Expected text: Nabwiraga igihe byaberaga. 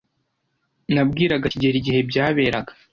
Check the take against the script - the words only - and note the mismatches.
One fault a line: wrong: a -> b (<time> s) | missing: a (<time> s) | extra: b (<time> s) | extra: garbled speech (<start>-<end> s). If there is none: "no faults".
extra: kigeli (1.5 s)